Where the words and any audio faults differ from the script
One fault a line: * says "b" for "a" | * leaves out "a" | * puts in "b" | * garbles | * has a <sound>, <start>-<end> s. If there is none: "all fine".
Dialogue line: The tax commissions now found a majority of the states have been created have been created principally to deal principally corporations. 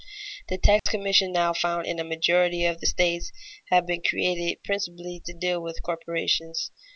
* has a dropout, 0.8-0.9 s
* puts in "in"
* leaves out "have been created"
* says "with" for "principally"